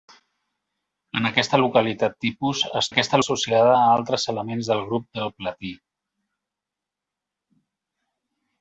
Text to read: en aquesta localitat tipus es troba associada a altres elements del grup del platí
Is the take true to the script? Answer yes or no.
no